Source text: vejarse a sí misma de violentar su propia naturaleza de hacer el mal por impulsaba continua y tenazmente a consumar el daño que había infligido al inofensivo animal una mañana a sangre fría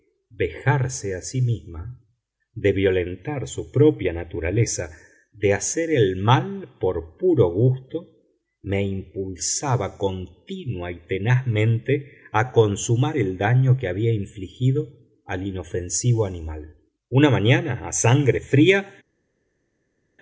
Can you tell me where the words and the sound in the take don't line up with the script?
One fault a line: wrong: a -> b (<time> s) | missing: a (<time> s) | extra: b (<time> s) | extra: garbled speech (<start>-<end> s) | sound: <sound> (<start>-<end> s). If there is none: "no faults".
extra: puro gusto me (7.2 s)